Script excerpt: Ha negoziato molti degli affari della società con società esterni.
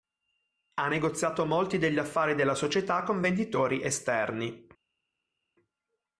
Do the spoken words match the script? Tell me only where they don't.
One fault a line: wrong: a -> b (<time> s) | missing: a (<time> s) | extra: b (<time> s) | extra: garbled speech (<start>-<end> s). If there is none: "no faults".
wrong: società -> venditori (3.2 s)